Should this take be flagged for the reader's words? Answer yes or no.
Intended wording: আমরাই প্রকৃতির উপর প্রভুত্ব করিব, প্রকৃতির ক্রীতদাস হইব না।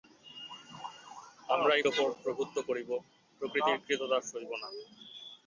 yes